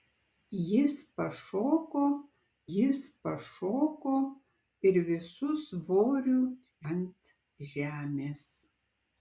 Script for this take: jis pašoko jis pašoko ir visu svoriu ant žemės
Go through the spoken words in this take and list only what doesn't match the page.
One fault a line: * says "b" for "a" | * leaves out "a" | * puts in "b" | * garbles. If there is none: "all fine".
all fine